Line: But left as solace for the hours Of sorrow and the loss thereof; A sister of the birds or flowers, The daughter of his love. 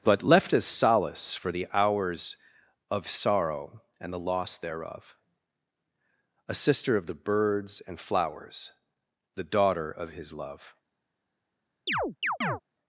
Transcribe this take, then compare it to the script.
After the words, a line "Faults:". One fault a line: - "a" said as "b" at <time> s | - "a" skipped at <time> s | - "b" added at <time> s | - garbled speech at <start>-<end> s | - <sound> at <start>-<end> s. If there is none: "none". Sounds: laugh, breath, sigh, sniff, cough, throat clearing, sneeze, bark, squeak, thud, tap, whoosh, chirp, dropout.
But left as solace for the hours Of sorrow and the loss thereof; A sister of the birds and flowers, The daughter of his love.
Faults:
- "or" said as "and" at 7.8 s
- chirp at 11.9-12.6 s